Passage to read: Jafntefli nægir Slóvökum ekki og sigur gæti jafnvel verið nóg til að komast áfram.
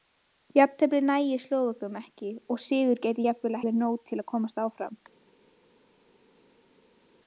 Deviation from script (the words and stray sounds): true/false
false